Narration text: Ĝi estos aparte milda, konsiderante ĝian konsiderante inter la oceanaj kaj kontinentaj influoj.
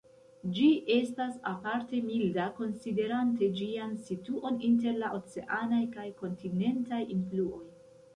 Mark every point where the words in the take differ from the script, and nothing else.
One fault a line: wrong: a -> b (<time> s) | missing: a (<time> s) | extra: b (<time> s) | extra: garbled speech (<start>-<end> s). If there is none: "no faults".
wrong: estos -> estas (0.9 s)
wrong: konsiderante -> situon (4.1 s)